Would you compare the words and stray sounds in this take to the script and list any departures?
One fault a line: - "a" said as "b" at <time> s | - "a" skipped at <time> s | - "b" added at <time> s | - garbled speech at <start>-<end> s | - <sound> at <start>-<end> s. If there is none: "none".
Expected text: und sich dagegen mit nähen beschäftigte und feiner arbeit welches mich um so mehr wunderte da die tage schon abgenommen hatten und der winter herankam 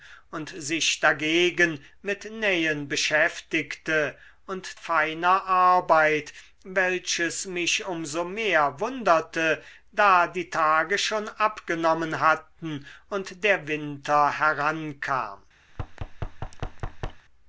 - thud at 15.7-17.2 s